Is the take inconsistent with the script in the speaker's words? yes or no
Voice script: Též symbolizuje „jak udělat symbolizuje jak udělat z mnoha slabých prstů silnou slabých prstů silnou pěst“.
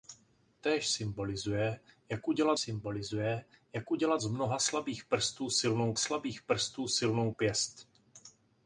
no